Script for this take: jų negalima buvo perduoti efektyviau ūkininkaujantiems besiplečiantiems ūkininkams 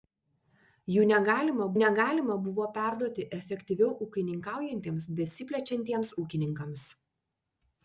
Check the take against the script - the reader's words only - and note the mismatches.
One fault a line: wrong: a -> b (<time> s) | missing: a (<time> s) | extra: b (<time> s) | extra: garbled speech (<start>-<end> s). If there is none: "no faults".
extra: negalima (1.8 s)